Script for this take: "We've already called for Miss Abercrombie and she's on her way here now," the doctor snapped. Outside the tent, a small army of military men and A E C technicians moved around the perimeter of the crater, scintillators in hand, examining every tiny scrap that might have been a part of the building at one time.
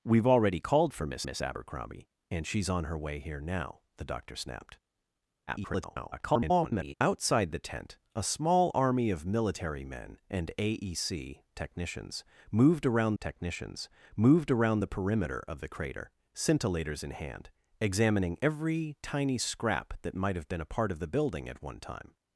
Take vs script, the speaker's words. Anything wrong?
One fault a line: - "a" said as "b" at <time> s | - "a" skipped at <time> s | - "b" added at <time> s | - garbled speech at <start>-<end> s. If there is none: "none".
- "Miss" added at 1.2 s
- garbled speech at 5.5-6.9 s
- "technicians moved around" added at 13.2 s